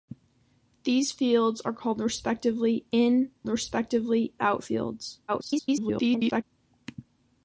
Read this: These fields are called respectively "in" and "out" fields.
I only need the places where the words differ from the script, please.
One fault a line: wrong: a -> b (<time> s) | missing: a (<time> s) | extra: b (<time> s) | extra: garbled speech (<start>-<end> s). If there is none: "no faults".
wrong: and -> respectively (3.5 s)
extra: garbled speech (5.3-6.4 s)